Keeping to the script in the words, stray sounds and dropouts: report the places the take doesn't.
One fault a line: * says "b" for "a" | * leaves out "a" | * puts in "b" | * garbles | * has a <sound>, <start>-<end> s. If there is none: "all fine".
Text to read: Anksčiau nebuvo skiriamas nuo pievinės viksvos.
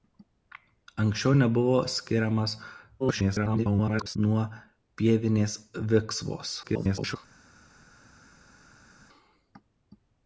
* garbles
* garbles